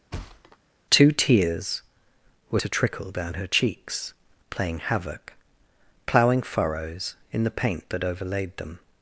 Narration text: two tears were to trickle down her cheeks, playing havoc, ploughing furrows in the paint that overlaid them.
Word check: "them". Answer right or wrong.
right